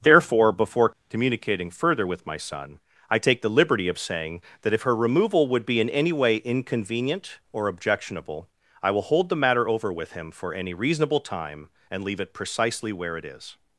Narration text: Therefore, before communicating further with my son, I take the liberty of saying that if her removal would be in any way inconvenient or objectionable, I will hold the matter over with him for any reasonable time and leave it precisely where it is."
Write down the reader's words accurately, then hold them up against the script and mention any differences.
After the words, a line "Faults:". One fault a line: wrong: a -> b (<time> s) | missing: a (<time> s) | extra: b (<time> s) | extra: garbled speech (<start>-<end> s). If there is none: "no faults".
Therefore, before communicating further with my son, I take the liberty of saying that if her removal would be in any way inconvenient or objectionable, I will hold the matter over with him for any reasonable time and leave it precisely where it is."
Faults:
no faults